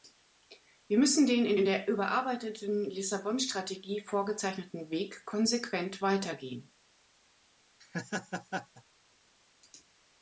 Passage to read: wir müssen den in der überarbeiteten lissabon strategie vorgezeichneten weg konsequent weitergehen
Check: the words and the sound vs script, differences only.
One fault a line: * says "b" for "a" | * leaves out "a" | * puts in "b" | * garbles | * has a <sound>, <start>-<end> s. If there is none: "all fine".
* puts in "in"
* has a laugh, 7.8-8.8 s